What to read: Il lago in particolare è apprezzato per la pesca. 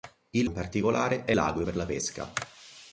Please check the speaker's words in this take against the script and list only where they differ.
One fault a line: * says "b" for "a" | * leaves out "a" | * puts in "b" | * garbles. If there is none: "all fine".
* leaves out "lago"
* says "lago" for "apprezzato"